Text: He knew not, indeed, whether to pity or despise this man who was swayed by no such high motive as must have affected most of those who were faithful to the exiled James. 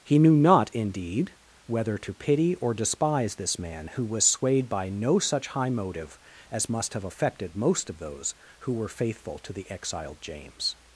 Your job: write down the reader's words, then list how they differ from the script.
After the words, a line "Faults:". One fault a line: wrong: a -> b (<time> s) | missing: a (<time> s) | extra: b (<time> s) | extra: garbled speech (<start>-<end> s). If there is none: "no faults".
He knew not, indeed, whether to pity or despise this man who was swayed by no such high motive as must have affected most of those who were faithful to the exiled James.
Faults:
no faults